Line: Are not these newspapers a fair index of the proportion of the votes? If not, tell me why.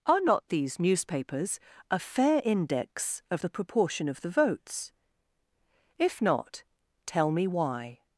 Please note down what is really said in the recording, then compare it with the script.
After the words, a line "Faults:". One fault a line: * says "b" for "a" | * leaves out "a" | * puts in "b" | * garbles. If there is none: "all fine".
Are not these newspapers a fair index of the proportion of the votes? If not, tell me why.
Faults:
all fine